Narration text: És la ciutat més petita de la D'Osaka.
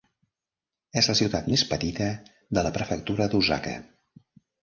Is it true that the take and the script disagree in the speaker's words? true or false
true